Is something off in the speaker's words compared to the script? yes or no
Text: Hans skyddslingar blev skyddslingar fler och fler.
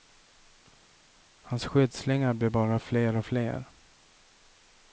yes